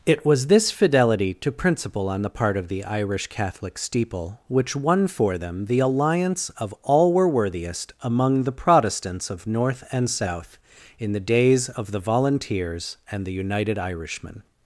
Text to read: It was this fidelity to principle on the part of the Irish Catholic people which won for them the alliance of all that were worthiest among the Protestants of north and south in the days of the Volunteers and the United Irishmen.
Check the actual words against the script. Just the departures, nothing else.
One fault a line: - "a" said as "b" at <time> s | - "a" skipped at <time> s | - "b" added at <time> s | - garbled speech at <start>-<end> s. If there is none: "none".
- "people" said as "steeple" at 3.8 s
- "that" skipped at 7.1 s